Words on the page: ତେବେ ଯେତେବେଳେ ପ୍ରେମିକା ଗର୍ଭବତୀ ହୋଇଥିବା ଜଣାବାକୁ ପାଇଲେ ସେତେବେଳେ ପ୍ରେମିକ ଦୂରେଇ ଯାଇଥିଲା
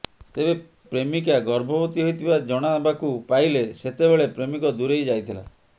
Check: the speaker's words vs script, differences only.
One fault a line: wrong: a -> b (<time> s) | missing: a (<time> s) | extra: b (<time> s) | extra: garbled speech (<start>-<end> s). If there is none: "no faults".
missing: ଯେତେବେଳେ (0.5 s)